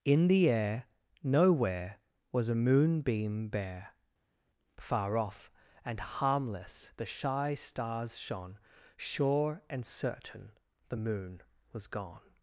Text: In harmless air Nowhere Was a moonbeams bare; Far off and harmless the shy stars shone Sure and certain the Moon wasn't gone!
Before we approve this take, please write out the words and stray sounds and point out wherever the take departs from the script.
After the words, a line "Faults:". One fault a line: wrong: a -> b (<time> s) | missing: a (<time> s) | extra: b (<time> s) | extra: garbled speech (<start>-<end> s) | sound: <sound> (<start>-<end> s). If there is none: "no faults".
In the air Nowhere Was a moonbeam bare; Far off and harmless the shy stars shone Sure and certain the Moon was gone!
Faults:
wrong: harmless -> the (0.3 s)
wrong: moonbeams -> moonbeam (2.5 s)
wrong: wasn't -> was (11.7 s)